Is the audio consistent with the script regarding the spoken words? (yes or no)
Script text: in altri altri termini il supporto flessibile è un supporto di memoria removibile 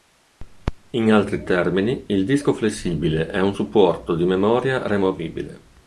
no